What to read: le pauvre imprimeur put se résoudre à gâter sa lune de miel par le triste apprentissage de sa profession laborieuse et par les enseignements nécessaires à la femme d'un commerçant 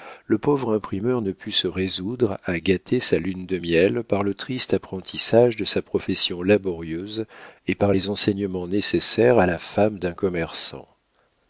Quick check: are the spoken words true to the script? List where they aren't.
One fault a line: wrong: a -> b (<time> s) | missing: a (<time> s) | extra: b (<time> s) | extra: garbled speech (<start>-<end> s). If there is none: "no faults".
extra: ne (1.2 s)